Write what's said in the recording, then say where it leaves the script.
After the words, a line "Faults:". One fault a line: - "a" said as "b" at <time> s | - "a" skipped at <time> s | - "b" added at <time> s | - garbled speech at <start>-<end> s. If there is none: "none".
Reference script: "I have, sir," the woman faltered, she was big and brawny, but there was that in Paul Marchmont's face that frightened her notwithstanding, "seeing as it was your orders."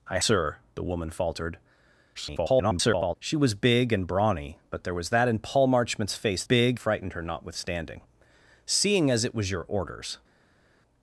"I sir," the woman faltered, [garbled] she was big and brawny, but there was that in Paul Marchmont's face big frightened her notwithstanding, "seeing as it was your orders."
Faults:
- "have" skipped at 0.2 s
- garbled speech at 2.1-3.2 s
- "that" said as "big" at 6.4 s